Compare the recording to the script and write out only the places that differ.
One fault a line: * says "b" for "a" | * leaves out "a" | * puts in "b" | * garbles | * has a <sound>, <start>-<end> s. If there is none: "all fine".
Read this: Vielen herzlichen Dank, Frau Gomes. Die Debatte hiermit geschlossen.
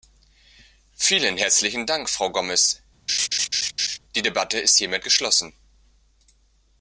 * has a laugh, 3.1-4.0 s
* puts in "ist"